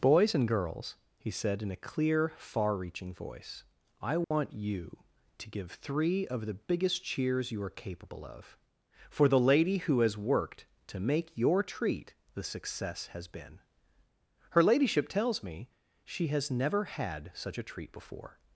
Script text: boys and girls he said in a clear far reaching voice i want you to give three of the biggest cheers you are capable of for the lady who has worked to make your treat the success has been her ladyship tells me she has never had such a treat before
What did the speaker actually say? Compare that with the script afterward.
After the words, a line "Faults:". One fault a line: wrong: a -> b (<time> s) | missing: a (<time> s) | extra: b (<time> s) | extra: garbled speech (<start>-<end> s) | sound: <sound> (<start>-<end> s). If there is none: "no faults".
boys and girls he said in a clear far reaching voice i want you to give three of the biggest cheers you are capable of for the lady who has worked to make your treat the success has been her ladyship tells me she has never had such a treat before
Faults:
sound: dropout (4.2-4.3 s)